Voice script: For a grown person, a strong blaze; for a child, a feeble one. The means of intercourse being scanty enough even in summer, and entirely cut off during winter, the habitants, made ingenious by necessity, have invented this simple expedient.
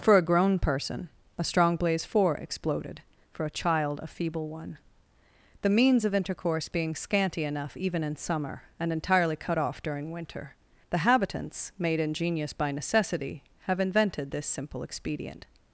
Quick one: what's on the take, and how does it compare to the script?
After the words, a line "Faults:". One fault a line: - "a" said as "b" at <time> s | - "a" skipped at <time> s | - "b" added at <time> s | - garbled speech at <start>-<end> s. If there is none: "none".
For a grown person, a strong blaze; four exploded for a child, a feeble one. The means of intercourse being scanty enough even in summer, and entirely cut off during winter, the habitants, made ingenious by necessity, have invented this simple expedient.
Faults:
- "four exploded" added at 2.0 s